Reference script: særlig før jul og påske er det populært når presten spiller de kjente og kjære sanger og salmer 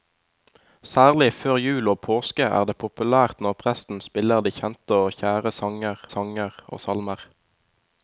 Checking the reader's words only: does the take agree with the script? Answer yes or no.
no